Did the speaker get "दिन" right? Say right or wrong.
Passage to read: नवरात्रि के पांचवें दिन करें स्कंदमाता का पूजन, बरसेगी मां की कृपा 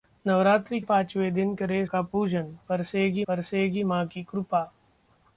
right